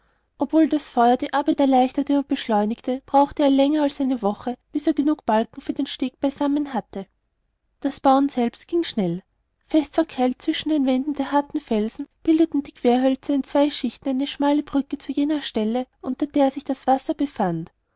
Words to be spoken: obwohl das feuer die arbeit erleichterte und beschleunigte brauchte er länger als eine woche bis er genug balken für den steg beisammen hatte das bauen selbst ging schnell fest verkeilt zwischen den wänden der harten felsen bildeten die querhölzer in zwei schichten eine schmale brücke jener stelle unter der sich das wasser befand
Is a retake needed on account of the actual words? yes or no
yes